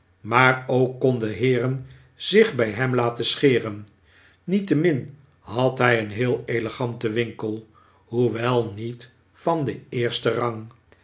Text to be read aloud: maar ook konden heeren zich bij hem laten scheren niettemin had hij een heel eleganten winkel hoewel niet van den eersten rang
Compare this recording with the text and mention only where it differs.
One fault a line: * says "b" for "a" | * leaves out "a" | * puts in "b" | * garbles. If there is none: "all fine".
all fine